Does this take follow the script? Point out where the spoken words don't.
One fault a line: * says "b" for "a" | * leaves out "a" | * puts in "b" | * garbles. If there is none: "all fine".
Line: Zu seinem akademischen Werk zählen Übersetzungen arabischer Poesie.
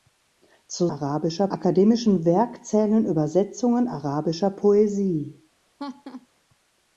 * says "arabischer" for "seinem"